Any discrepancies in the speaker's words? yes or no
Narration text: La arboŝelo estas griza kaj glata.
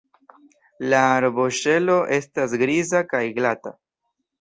no